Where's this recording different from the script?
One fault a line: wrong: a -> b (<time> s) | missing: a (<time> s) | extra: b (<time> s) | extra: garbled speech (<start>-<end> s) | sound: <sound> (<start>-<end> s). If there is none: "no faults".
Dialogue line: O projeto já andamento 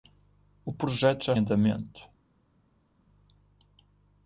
no faults